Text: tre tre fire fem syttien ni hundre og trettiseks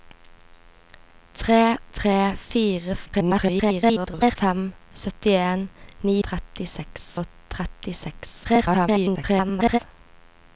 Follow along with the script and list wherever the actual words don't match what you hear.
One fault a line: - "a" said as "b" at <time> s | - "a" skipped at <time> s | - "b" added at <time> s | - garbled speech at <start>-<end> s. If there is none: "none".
- garbled speech at 3.1-4.4 s
- "hundre" said as "trettiseks" at 6.3 s
- garbled speech at 8.4-9.8 s